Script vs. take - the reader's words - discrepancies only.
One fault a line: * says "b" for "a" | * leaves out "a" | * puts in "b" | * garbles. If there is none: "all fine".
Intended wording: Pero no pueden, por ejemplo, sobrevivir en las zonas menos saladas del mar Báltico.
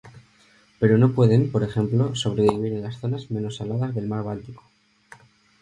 all fine